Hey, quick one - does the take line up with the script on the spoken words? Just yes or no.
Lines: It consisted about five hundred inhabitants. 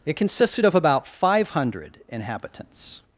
no